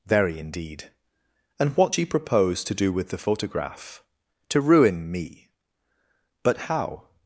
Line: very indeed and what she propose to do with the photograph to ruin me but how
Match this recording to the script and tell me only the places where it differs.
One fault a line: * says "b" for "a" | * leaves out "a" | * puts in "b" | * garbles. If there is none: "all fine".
all fine